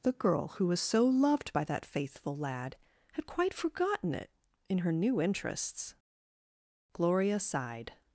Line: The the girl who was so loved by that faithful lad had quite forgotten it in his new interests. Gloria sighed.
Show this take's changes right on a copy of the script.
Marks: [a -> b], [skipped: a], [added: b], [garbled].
The [skipped: the] girl who was so loved by that faithful lad had quite forgotten it in [his -> her] new interests. Gloria sighed.